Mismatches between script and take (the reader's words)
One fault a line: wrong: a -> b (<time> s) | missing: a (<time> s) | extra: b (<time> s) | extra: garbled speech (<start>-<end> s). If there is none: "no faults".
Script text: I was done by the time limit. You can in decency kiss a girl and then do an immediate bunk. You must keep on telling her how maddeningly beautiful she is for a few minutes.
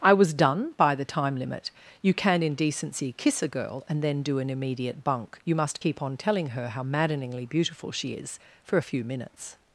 no faults